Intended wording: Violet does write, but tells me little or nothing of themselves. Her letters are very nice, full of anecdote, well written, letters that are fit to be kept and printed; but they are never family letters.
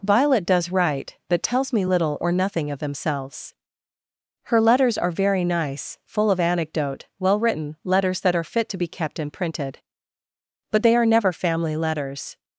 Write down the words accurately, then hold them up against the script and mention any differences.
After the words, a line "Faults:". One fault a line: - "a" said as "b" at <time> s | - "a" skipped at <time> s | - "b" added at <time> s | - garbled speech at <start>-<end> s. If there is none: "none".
Violet does write, but tells me little or nothing of themselves. Her letters are very nice, full of anecdote, well written, letters that are fit to be kept and printed; but they are never family letters.
Faults:
none